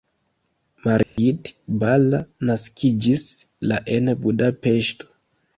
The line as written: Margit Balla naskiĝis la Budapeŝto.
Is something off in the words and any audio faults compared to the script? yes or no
yes